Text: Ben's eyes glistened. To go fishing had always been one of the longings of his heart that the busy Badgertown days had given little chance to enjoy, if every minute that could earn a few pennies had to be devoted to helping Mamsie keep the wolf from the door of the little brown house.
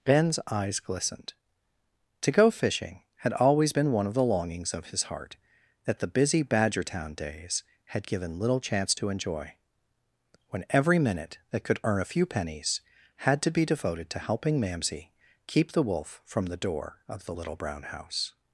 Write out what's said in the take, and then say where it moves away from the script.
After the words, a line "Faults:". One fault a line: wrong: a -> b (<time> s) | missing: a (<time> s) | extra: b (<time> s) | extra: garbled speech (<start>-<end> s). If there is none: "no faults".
Ben's eyes glistened. To go fishing had always been one of the longings of his heart that the busy Badgertown days had given little chance to enjoy, when every minute that could earn a few pennies had to be devoted to helping Mamsie keep the wolf from the door of the little brown house.
Faults:
wrong: if -> when (10.5 s)